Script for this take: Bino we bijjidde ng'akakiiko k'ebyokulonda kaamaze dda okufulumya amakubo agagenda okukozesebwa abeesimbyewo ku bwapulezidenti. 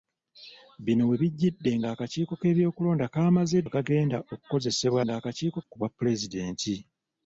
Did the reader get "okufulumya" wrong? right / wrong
wrong